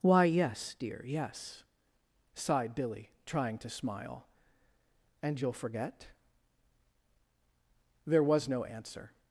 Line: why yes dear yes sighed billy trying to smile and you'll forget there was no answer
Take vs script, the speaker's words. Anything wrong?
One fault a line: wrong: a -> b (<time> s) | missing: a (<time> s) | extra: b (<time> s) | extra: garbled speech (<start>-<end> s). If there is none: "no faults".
no faults